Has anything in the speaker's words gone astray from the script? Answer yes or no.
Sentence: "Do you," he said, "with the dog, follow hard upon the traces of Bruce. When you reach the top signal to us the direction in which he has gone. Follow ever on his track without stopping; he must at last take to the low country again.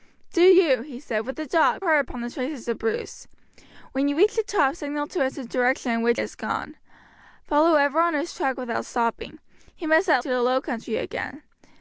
yes